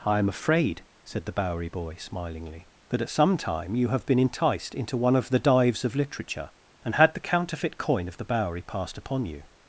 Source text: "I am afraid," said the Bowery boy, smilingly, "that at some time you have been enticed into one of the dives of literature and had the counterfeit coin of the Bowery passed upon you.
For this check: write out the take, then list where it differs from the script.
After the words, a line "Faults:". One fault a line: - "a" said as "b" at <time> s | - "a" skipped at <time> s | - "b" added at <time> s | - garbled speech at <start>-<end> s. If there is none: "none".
"I am afraid," said the Bowery boy, smilingly, "that at some time you have been enticed into one of the dives of literature and had the counterfeit coin of the Bowery passed upon you.
Faults:
none